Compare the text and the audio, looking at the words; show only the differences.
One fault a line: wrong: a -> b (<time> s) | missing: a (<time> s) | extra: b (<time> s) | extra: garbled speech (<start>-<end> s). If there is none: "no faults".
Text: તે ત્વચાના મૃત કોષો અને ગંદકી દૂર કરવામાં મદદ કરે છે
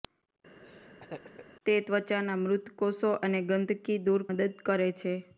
missing: કરવામાં (4.2 s)